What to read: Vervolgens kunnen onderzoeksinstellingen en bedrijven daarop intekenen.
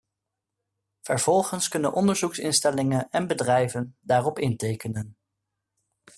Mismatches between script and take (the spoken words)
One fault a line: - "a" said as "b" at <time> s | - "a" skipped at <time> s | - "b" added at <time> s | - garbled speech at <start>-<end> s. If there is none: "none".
none